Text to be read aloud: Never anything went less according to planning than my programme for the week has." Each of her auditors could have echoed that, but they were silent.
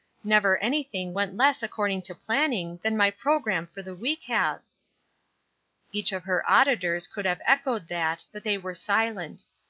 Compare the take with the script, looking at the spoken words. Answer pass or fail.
pass